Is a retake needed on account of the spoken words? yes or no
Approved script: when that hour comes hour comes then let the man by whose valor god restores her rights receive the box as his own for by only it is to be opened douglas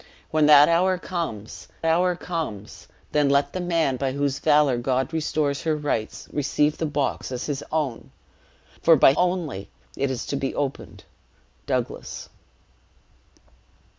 no